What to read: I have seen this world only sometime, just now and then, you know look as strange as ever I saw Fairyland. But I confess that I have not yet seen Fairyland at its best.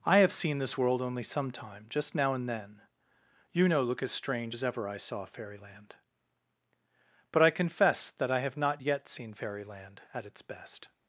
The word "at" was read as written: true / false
true